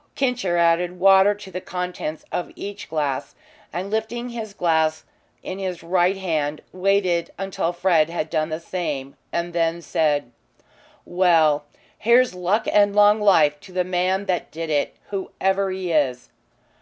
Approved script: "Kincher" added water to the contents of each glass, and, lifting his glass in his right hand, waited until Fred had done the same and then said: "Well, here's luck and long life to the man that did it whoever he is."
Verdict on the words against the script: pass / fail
pass